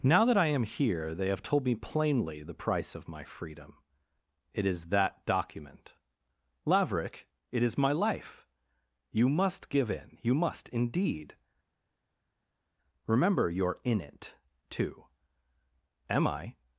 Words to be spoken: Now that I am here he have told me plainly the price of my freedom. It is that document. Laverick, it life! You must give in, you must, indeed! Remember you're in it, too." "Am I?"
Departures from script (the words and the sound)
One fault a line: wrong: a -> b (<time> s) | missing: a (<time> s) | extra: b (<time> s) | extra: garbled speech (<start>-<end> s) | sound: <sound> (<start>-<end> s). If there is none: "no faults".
wrong: he -> they (1.1 s)
extra: is my (7.6 s)